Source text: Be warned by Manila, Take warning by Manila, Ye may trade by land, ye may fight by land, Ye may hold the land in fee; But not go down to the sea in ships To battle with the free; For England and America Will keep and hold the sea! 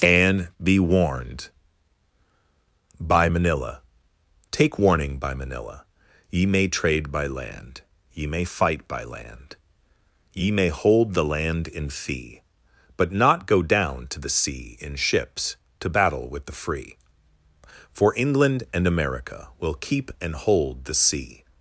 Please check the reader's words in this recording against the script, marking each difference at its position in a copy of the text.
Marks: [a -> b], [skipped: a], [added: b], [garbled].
[added: and] Be warned by Manila, Take warning by Manila, Ye may trade by land, ye may fight by land, Ye may hold the land in fee; But not go down to the sea in ships To battle with the free; For England and America Will keep and hold the sea!